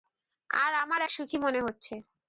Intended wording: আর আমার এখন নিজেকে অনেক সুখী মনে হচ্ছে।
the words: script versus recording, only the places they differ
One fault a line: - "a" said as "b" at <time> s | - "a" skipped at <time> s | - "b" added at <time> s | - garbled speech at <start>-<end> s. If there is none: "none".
- "এখন নিজেকে অনেক" skipped at 1.0 s